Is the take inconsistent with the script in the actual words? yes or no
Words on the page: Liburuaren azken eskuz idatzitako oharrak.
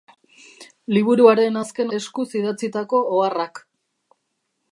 no